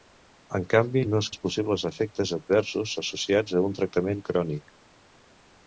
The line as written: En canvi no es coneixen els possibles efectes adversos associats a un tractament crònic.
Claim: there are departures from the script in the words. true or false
true